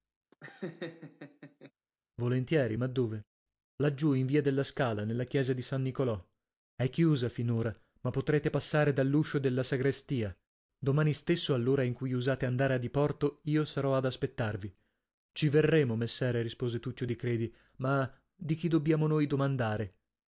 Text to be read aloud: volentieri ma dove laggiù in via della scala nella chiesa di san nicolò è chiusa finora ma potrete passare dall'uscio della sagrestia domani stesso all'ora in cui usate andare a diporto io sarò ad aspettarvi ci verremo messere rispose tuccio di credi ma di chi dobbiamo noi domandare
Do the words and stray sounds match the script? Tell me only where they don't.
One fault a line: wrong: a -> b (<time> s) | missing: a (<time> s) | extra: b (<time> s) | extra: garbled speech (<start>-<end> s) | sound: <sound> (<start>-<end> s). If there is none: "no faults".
sound: laugh (0.3-1.7 s)